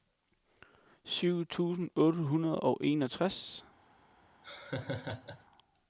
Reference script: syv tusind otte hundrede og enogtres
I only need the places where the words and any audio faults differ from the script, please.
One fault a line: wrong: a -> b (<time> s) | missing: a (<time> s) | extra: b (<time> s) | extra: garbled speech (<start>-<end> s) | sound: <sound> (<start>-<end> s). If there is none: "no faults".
sound: laugh (4.4-5.4 s)